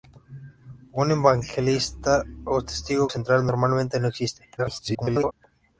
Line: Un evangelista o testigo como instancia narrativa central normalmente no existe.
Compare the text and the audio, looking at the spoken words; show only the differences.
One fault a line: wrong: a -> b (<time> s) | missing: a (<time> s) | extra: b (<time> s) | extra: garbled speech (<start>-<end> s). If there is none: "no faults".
missing: como instancia narrativa (3.1 s)
extra: garbled speech (4.6-5.3 s)